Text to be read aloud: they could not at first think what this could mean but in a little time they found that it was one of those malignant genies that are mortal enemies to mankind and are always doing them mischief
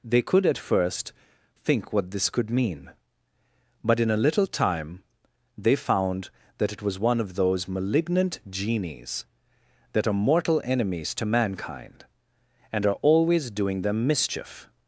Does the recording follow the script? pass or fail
fail